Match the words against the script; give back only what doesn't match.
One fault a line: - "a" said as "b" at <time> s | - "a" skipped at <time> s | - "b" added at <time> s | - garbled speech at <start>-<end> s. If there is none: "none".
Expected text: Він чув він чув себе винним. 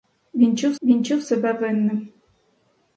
none